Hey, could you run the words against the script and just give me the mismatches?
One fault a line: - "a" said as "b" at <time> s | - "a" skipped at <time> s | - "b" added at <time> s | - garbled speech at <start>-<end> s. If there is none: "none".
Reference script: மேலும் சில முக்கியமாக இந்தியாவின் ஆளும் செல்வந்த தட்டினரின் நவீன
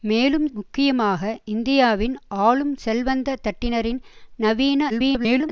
- "சில" skipped at 0.5 s
- garbled speech at 4.9-5.5 s